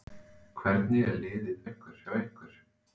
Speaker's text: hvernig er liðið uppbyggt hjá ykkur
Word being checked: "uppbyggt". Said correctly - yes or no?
no